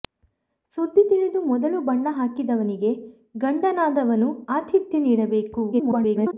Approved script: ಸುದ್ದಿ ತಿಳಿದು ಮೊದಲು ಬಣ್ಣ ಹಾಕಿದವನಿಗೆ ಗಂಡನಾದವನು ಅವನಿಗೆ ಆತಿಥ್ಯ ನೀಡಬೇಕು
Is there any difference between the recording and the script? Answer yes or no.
yes